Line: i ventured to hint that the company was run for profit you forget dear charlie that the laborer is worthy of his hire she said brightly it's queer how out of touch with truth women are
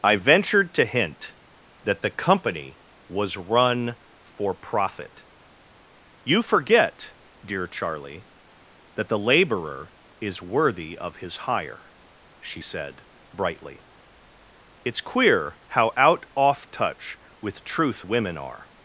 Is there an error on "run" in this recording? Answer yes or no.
no